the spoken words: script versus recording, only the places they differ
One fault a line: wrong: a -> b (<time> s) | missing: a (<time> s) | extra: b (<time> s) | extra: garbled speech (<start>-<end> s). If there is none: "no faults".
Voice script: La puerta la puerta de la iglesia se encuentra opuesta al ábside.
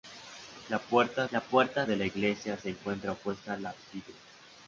no faults